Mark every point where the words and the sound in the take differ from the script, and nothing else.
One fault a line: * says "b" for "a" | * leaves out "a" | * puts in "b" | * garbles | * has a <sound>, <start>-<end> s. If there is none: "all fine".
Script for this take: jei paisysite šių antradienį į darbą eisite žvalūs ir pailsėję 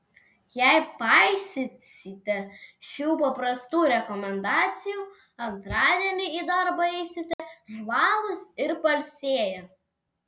* puts in "paprastų rekomendacijų"
* has a dropout, 7.3-7.4 s